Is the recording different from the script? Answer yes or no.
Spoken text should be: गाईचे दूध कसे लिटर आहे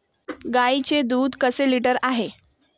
no